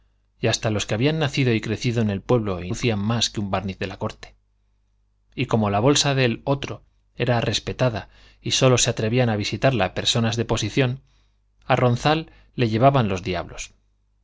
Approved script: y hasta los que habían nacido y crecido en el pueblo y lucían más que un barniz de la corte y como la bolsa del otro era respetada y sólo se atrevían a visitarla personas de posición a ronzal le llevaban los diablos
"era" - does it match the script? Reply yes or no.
yes